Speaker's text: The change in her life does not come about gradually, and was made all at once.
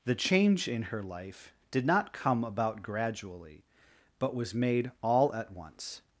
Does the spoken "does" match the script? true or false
false